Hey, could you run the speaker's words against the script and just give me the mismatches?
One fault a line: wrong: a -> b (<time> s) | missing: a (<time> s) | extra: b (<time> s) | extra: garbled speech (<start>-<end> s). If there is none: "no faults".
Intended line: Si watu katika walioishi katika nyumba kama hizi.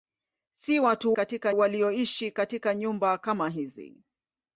no faults